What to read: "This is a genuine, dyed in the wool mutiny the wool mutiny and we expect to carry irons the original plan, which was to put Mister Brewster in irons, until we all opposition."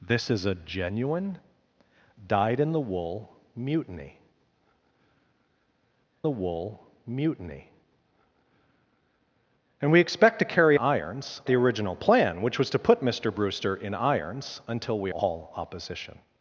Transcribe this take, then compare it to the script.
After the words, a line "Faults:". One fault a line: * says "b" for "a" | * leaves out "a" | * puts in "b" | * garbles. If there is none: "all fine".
"This is a genuine, dyed in the wool mutiny the wool mutiny and we expect to carry irons the original plan, which was to put Mister Brewster in irons, until we all opposition."
Faults:
all fine